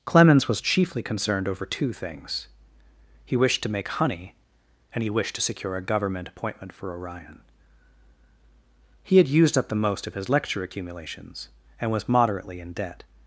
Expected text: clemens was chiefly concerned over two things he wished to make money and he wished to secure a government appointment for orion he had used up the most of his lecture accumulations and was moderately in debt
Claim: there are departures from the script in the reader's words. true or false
true